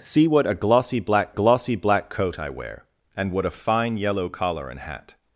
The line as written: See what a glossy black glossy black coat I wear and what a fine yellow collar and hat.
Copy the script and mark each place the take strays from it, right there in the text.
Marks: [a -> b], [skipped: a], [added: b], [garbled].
See what a glossy black glossy black coat I wear and what a fine yellow collar and hat.